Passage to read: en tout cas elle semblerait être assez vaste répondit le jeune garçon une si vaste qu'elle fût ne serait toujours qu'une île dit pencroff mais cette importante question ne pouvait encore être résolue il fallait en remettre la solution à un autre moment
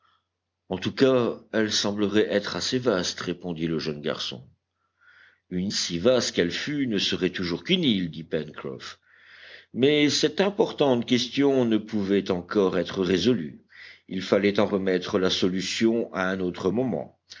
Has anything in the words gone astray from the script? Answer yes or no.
no